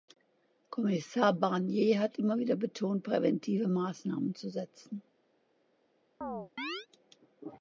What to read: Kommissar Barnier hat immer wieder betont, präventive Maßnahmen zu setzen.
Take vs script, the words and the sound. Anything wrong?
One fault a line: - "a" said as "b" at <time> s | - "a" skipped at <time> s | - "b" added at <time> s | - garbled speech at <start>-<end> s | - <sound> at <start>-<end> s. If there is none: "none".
- chirp at 6.2-6.9 s